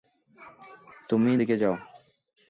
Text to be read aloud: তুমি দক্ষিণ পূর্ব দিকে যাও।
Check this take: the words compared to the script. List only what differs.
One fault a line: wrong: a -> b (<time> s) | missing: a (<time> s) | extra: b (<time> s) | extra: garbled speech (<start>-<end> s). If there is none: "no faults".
missing: দক্ষিণ পূর্ব (1.3 s)